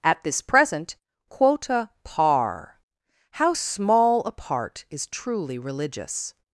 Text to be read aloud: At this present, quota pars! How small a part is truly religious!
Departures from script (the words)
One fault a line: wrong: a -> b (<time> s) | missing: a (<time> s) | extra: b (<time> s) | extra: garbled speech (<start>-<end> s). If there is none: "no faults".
wrong: pars -> par (2.0 s)